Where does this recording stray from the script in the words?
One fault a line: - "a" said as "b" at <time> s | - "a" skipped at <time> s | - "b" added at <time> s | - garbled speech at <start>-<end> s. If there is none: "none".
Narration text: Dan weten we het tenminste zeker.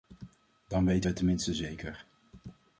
none